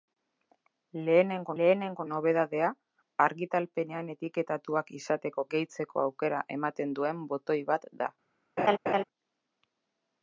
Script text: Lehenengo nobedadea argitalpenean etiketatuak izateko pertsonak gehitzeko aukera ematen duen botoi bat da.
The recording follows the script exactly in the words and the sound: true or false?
false